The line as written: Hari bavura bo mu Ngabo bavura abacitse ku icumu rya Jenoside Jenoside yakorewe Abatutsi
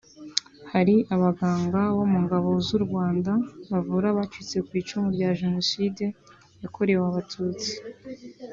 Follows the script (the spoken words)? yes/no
no